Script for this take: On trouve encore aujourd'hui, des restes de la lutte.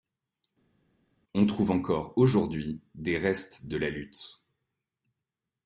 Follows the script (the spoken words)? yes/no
yes